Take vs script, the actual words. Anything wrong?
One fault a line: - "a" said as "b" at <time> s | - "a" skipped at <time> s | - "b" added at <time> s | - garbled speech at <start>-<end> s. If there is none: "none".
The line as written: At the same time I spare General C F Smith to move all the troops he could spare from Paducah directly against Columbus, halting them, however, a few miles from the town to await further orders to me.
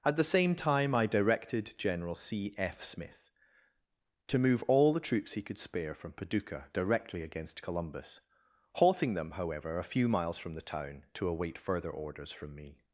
- "spare" said as "directed" at 1.1 s
- "to" said as "from" at 12.3 s